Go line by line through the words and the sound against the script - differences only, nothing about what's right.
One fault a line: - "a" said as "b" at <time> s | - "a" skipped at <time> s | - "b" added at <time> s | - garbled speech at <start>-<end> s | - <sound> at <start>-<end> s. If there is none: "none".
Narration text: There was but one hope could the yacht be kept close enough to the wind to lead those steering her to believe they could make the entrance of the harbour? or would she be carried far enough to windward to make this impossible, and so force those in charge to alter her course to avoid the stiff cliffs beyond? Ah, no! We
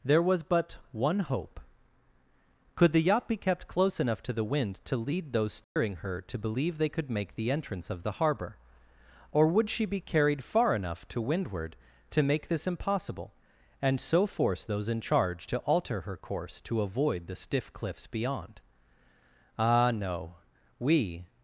- dropout at 5.6-5.8 s